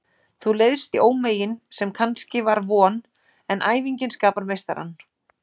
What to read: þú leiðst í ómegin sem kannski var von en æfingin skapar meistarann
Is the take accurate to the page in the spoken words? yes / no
yes